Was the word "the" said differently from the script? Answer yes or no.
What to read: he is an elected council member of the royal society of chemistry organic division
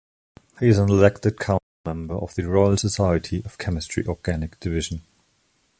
no